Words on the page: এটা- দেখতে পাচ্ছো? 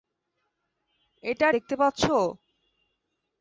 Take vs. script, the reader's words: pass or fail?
pass